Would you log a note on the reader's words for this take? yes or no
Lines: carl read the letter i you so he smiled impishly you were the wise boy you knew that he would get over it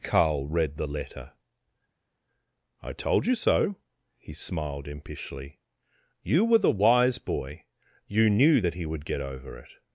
yes